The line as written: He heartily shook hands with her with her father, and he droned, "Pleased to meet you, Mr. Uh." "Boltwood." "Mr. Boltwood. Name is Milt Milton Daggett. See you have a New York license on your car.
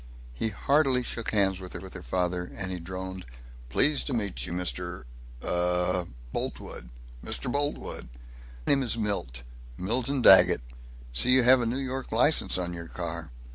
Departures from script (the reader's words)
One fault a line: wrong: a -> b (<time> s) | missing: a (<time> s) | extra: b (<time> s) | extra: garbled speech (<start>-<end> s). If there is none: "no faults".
no faults